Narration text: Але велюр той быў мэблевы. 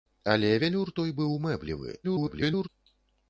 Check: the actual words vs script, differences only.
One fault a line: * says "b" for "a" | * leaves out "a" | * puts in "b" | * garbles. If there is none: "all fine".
* garbles